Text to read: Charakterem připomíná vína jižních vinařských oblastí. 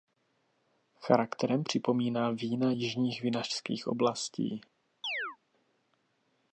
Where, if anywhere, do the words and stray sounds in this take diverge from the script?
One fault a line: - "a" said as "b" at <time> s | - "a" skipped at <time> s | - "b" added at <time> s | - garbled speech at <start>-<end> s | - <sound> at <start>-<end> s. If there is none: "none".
- chirp at 5.0-5.4 s